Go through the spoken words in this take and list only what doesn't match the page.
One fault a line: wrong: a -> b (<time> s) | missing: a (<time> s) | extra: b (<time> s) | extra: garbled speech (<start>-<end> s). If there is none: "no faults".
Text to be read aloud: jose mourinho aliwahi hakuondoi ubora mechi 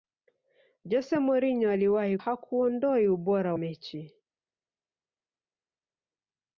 no faults